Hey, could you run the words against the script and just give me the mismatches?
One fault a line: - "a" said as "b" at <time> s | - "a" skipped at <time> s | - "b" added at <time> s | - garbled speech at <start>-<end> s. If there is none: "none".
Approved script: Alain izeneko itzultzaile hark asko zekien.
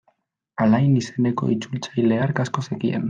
none